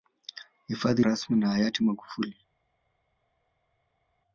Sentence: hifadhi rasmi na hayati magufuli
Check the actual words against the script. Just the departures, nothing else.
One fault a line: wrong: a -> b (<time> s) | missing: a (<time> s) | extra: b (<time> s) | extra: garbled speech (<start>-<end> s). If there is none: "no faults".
no faults